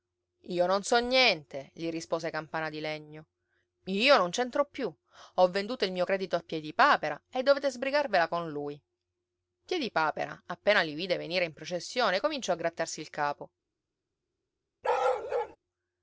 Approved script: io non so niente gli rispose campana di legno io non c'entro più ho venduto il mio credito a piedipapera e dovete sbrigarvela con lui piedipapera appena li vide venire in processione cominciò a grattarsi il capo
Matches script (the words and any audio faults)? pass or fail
fail